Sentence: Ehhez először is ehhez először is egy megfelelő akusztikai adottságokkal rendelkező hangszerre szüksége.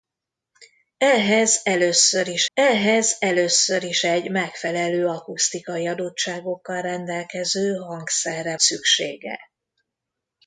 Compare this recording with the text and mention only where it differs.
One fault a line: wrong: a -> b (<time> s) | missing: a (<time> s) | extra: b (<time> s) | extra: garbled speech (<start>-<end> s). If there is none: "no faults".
no faults